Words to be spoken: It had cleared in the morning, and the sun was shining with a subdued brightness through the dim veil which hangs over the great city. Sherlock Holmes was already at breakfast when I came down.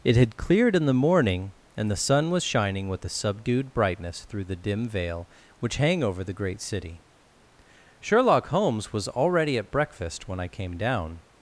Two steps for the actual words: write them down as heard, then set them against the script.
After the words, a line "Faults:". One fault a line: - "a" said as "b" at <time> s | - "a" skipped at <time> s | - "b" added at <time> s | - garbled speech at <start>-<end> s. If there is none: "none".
It had cleared in the morning, and the sun was shining with a subdued brightness through the dim veil which hang over the great city. Sherlock Holmes was already at breakfast when I came down.
Faults:
- "hangs" said as "hang" at 5.8 s